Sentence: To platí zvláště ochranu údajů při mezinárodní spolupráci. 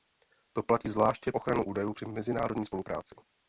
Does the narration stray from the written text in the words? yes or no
no